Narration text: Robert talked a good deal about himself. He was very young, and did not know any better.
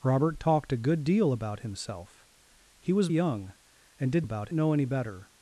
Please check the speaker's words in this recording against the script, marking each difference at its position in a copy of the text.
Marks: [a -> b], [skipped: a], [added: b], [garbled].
Robert talked a good deal about himself. He was [skipped: very] young, and did [not -> about] know any better.